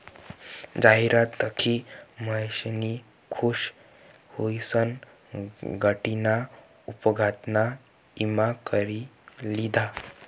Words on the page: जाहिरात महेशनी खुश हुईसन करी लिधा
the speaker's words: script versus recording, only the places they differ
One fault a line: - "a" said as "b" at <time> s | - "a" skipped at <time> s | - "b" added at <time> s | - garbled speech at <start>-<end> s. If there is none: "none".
- "दखी" added at 1.4 s
- "गाडीना अपघातना ईमा" added at 5.8 s